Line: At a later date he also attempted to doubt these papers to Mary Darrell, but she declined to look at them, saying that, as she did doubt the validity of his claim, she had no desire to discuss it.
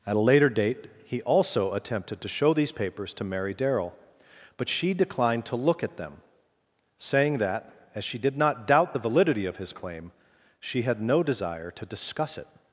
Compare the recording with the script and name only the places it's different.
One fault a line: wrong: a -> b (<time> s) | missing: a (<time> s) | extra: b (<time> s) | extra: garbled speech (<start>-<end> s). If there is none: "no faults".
wrong: doubt -> show (2.3 s)
extra: not (8.4 s)